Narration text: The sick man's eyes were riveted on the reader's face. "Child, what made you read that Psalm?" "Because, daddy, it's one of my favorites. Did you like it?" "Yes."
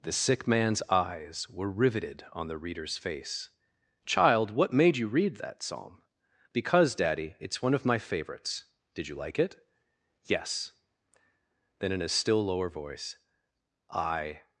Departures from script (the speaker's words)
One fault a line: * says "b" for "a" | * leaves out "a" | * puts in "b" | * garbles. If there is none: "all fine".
* puts in "Then in a still lower voice I"